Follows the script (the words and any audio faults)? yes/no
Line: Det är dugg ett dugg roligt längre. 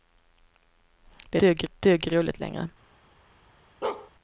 no